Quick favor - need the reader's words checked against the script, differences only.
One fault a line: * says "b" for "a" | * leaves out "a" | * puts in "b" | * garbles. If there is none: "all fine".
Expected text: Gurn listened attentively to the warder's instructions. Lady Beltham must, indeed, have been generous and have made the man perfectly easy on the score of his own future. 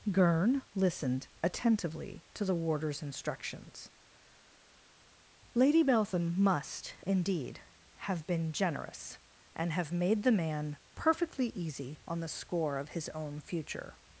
all fine